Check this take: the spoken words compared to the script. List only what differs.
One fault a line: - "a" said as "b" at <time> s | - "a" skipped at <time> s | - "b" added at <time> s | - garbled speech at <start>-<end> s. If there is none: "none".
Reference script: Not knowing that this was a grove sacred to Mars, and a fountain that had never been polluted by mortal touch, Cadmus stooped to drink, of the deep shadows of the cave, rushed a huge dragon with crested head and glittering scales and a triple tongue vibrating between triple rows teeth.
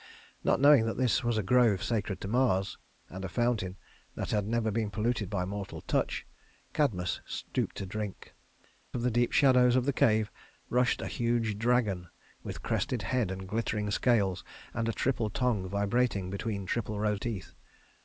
none